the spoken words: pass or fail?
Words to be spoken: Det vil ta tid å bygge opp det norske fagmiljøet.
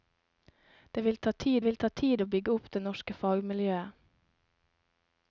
fail